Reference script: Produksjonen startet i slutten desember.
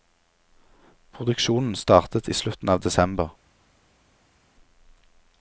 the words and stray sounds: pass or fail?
fail